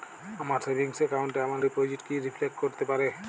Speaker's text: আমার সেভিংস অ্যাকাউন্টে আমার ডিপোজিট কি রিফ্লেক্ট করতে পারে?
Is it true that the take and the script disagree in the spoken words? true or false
false